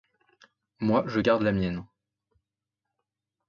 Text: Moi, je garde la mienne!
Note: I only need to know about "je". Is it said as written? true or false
true